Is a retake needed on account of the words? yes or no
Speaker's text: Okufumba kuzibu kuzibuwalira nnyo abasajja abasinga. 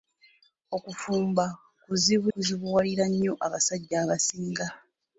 no